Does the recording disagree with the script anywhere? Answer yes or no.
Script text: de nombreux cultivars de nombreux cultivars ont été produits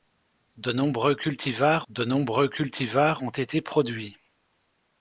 no